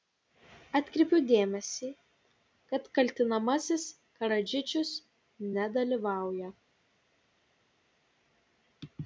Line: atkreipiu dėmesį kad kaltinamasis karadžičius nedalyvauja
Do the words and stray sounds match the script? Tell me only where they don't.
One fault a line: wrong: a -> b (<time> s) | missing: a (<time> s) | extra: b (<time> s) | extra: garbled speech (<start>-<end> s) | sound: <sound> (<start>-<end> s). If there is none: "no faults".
no faults